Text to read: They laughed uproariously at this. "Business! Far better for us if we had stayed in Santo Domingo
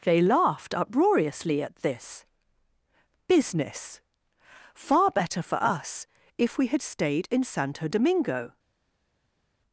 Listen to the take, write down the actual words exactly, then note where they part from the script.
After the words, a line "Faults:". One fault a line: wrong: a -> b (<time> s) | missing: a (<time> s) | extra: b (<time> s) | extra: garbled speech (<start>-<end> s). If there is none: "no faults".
They laughed uproariously at this. "Business! Far better for us if we had stayed in Santo Domingo
Faults:
no faults